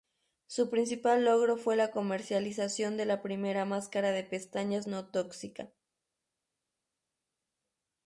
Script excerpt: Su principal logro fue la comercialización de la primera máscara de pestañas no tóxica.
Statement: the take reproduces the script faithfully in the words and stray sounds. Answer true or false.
true